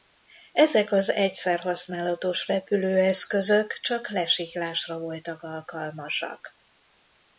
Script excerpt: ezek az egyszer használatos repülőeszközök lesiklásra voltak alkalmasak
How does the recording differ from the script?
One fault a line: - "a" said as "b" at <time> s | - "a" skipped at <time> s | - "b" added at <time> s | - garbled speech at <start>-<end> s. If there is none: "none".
- "csak" added at 3.8 s